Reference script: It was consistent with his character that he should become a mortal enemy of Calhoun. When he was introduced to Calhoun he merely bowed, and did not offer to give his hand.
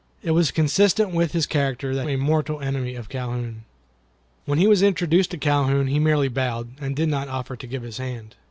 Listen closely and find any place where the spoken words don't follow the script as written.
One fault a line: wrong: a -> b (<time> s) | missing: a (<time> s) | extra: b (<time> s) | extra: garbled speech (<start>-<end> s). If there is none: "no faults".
missing: he should become (2.1 s)